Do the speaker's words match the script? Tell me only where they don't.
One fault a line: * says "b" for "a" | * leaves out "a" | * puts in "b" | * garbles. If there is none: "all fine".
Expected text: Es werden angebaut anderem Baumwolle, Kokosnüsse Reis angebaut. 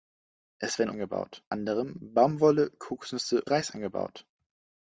all fine